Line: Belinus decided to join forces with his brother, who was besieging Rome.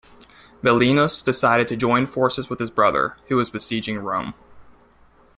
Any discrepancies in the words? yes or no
no